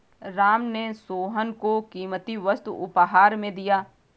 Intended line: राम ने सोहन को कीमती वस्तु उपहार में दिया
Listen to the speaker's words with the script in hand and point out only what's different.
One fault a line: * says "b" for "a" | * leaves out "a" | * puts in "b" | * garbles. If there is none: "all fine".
all fine